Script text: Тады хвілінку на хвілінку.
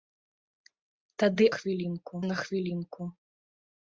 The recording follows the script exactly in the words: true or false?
true